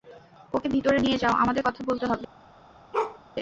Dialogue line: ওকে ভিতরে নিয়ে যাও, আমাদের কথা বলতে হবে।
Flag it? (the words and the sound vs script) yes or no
yes